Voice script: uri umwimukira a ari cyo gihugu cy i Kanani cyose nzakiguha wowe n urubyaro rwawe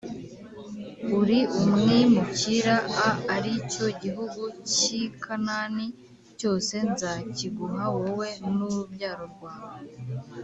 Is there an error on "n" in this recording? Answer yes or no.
no